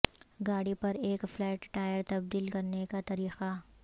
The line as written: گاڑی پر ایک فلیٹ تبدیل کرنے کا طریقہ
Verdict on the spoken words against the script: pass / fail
fail